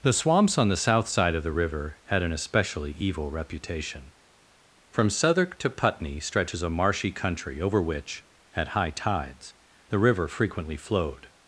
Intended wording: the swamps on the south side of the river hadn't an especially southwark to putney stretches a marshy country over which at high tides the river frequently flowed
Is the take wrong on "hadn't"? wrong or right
wrong